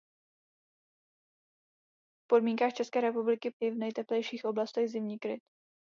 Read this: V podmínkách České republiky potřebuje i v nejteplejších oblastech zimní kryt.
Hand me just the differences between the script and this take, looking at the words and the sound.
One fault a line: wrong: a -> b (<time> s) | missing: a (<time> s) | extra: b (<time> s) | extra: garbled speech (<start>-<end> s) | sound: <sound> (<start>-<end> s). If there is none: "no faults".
missing: potřebuje (3.5 s)